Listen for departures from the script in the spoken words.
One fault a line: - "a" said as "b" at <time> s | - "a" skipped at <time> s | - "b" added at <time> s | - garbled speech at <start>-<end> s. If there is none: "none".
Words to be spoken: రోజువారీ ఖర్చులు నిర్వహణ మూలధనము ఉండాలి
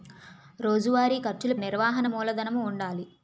none